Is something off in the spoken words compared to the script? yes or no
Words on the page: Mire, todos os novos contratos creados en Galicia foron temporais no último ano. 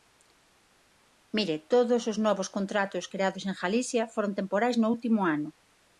no